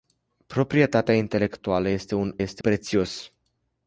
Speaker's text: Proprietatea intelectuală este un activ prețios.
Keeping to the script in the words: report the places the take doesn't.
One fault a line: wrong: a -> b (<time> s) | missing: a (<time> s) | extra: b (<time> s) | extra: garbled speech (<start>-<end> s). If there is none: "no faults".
wrong: activ -> este (2.4 s)